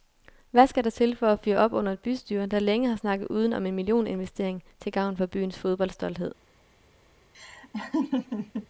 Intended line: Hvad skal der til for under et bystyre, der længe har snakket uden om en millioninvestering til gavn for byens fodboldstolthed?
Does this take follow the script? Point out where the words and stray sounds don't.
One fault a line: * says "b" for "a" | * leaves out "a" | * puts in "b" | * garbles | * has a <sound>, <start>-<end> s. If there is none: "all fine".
* puts in "at fyre op"
* has a laugh, 7.3-8.7 s